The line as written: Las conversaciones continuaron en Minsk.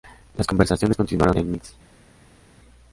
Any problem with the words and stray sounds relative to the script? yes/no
no